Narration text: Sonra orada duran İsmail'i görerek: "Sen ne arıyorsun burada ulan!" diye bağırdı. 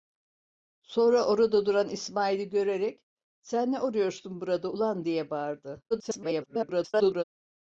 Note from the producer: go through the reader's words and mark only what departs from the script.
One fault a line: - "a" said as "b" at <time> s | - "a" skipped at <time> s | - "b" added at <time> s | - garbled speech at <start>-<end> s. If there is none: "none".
- garbled speech at 5.9-7.2 s